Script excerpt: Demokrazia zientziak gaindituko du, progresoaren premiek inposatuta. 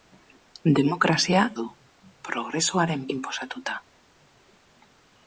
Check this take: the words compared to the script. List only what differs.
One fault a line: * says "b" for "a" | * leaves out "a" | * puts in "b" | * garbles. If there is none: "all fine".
* leaves out "zientziak gaindituko"
* leaves out "premiek"